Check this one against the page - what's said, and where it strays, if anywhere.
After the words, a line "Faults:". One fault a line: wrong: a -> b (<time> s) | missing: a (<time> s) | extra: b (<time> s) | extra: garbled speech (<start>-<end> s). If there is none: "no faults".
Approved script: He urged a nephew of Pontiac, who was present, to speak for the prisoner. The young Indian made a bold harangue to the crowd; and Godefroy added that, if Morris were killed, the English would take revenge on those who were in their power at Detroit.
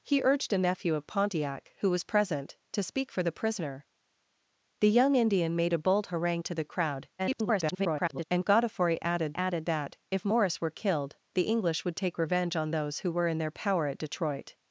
He urged a nephew of Pontiac, who was present, to speak for the prisoner. The young Indian made a bold harangue to the crowd; [garbled] and Godefroy added added that, if Morris were killed, the English would take revenge on those who were in their power at Detroit.
Faults:
extra: garbled speech (7.2-8.3 s)
extra: added (9.3 s)